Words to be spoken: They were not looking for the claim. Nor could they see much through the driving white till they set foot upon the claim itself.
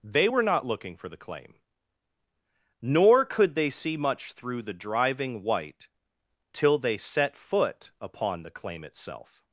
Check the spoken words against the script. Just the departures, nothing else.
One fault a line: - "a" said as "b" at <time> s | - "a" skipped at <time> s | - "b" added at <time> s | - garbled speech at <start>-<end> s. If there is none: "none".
none